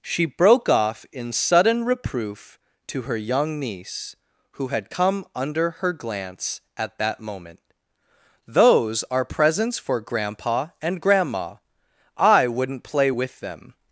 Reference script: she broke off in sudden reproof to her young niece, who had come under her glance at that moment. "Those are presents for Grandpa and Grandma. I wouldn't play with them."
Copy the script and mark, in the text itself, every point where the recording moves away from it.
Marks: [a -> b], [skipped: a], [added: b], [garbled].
she broke off in sudden reproof to her young niece, who had come under her glance at that moment. "Those are presents for Grandpa and Grandma. I wouldn't play with them."